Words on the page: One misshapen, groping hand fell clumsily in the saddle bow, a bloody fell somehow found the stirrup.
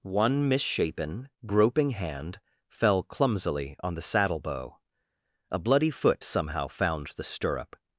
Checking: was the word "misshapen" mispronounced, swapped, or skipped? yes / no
no